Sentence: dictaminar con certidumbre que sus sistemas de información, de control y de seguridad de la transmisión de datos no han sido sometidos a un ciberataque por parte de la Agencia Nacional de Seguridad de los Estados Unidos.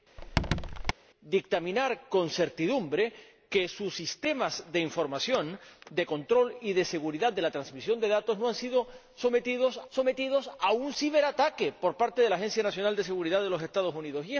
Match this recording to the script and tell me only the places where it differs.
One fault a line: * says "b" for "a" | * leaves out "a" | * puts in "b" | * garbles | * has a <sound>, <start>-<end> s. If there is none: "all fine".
* has a squeak, 0.2-0.9 s
* puts in "sometidos"